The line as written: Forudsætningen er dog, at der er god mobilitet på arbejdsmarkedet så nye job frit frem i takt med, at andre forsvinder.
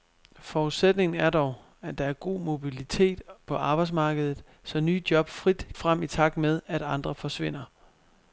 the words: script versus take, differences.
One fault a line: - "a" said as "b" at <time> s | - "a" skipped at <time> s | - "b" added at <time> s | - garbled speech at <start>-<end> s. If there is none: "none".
none